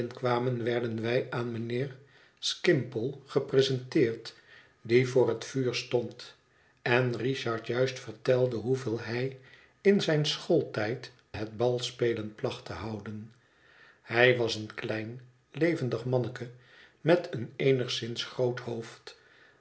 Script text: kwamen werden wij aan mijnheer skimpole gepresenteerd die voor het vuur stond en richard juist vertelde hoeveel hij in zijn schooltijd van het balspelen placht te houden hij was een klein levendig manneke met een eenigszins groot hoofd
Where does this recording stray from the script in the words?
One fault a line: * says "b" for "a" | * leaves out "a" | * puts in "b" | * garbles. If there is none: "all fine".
* leaves out "van"